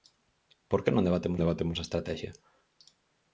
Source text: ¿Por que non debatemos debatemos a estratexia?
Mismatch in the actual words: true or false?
false